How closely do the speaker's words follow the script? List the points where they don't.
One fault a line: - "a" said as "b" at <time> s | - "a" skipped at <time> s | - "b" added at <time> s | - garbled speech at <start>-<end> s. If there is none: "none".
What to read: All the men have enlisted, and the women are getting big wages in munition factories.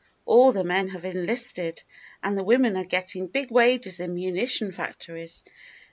none